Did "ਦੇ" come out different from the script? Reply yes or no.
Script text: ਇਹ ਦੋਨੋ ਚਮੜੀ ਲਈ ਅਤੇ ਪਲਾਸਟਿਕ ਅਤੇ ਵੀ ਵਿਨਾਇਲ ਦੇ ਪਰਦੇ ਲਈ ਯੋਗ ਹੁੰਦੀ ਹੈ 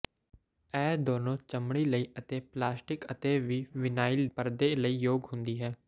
yes